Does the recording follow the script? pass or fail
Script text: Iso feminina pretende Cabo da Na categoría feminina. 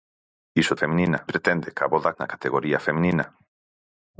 pass